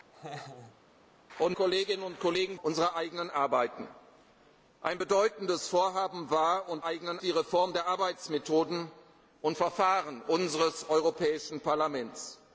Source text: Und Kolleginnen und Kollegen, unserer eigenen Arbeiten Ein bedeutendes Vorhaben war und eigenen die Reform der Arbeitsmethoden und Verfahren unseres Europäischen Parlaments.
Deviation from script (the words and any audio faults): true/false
true